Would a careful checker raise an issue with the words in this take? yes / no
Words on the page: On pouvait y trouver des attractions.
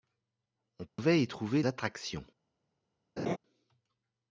yes